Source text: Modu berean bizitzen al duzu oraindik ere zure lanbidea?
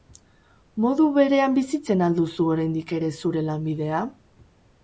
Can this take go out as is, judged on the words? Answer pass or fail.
pass